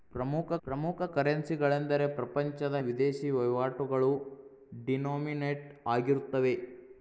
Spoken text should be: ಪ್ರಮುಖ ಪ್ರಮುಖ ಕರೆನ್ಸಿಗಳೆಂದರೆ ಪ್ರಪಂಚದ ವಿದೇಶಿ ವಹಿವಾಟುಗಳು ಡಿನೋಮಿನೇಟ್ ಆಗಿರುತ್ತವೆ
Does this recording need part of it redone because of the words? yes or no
no